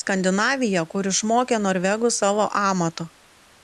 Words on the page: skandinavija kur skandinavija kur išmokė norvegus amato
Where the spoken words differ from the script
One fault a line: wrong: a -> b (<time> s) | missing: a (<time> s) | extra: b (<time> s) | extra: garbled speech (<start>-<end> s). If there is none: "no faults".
missing: skandinavija kur (1.1 s)
extra: savo (2.2 s)